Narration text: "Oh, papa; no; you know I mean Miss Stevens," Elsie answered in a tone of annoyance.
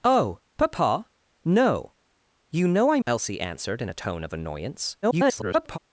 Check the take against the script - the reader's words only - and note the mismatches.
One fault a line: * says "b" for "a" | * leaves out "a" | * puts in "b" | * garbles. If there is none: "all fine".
* leaves out "mean Miss Stevens"
* garbles